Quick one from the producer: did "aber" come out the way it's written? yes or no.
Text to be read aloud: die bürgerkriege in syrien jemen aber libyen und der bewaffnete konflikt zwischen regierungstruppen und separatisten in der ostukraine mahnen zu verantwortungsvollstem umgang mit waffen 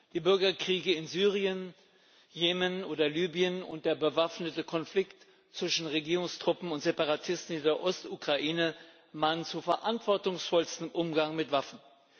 no